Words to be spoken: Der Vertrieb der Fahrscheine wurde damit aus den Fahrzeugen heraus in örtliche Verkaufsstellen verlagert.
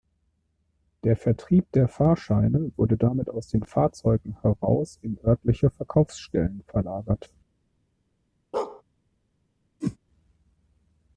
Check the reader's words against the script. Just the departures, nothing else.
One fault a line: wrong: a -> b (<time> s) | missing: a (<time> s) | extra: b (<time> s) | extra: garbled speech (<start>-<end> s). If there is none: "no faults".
no faults